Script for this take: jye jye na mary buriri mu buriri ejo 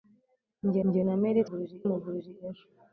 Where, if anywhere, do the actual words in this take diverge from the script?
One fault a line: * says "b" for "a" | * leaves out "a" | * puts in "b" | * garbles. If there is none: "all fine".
all fine